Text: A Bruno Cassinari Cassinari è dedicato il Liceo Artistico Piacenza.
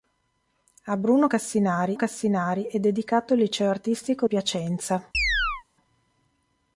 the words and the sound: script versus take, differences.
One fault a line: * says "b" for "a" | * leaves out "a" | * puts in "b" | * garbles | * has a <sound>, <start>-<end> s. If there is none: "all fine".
* has a chirp, 5.1-5.6 s